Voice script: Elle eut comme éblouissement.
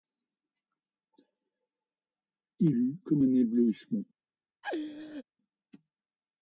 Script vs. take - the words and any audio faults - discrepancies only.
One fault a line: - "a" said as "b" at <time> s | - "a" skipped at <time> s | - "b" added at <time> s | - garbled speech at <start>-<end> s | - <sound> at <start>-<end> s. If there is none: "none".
- "Elle" said as "Il" at 2.6 s
- "un" added at 3.2 s
- laugh at 4.6-5.2 s